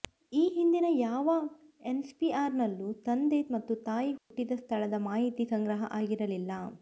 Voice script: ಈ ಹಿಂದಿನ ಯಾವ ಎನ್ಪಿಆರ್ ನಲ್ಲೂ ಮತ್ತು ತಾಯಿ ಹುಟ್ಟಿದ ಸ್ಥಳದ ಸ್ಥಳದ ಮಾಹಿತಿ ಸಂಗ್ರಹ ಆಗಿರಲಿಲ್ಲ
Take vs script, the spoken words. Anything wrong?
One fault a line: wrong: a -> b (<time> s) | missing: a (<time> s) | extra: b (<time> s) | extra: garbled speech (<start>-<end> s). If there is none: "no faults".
extra: ತಂದೆ (3.0 s)
missing: ಸ್ಥಳದ (5.0 s)